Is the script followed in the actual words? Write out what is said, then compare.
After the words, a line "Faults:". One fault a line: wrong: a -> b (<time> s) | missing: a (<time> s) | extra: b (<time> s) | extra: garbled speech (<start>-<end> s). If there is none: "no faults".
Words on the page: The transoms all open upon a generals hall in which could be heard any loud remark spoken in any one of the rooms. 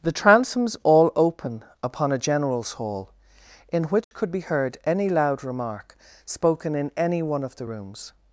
The transoms all open upon a generals hall in which could be heard any loud remark spoken in any one of the rooms.
Faults:
no faults